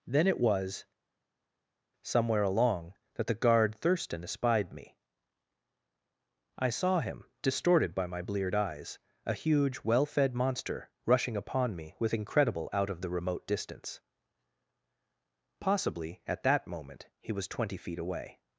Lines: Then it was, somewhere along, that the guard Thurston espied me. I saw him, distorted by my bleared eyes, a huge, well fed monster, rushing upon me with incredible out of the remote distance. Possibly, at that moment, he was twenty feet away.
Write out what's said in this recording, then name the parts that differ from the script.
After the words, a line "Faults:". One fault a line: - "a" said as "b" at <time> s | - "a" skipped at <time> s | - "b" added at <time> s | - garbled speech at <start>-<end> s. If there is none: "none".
Then it was, somewhere along, that the guard Thurston espied me. I saw him, distorted by my bleared eyes, a huge, well fed monster, rushing upon me with incredible out of the remote distance. Possibly, at that moment, he was twenty feet away.
Faults:
none